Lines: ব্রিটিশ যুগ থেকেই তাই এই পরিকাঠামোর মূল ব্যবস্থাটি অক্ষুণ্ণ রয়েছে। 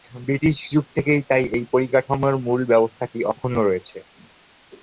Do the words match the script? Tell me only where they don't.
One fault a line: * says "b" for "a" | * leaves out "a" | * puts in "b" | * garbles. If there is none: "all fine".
all fine